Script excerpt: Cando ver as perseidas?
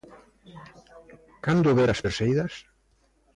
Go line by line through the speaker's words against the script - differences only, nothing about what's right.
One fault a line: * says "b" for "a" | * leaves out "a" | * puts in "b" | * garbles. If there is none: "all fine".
all fine